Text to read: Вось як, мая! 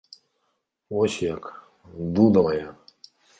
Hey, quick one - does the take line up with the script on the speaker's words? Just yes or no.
no